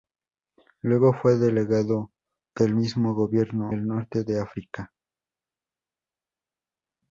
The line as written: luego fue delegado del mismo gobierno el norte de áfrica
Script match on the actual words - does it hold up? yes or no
yes